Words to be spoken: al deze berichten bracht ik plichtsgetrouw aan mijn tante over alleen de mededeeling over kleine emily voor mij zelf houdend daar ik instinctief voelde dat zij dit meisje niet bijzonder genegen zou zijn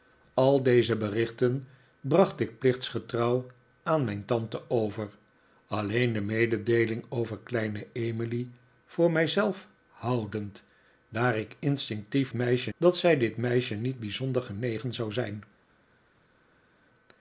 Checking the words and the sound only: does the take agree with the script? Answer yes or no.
no